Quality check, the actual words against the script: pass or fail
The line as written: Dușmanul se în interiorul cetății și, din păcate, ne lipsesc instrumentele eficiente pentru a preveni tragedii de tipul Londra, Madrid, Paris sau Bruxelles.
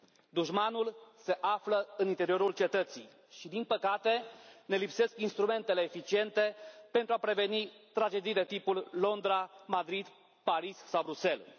fail